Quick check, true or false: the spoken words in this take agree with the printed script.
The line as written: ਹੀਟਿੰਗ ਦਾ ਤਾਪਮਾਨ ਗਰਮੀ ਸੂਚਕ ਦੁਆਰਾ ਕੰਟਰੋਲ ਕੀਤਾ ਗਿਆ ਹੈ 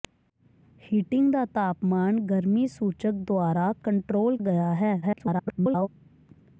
false